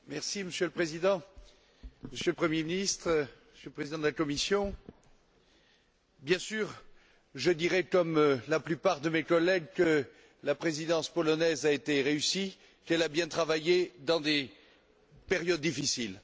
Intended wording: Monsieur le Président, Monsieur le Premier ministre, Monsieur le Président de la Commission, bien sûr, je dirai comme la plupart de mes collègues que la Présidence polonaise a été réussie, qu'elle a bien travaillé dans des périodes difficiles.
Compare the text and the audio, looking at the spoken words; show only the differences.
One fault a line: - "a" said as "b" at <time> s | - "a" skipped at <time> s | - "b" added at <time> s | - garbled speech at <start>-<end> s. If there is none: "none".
none